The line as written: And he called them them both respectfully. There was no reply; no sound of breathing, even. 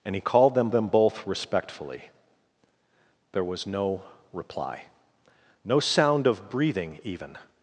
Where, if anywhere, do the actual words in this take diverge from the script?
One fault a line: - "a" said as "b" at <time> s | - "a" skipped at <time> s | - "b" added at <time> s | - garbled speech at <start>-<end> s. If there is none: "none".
none